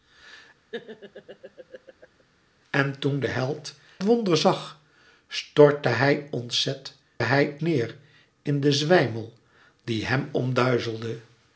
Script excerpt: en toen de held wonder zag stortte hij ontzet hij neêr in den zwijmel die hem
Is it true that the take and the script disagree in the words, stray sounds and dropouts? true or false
true